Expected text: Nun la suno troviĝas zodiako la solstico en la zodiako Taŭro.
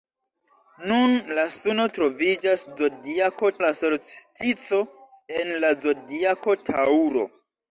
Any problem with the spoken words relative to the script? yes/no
no